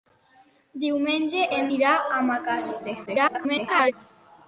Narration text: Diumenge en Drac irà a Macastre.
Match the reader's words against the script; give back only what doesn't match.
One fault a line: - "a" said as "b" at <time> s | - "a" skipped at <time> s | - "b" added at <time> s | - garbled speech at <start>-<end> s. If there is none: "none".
- "Drac" skipped at 1.7 s
- garbled speech at 3.1-3.9 s